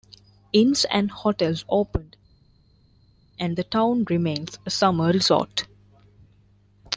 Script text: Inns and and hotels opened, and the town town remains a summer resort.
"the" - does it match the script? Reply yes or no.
yes